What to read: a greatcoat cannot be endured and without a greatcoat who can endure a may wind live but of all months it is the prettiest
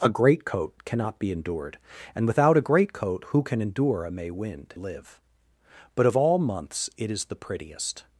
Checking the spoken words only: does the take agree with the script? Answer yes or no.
yes